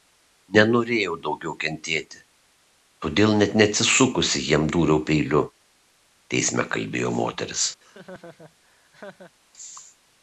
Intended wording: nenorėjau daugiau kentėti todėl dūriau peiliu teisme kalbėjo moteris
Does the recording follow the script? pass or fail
fail